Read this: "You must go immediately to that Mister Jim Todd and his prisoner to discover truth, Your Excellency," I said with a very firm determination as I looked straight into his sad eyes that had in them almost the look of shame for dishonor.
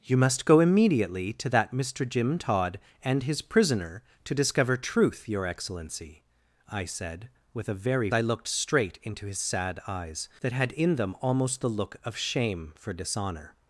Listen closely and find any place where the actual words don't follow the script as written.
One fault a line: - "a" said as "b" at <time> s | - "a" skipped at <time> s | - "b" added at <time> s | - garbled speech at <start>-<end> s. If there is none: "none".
- "firm determination as" skipped at 8.1 s